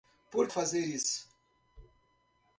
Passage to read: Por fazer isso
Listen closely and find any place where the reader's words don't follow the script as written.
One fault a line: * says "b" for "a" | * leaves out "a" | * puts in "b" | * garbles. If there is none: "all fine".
all fine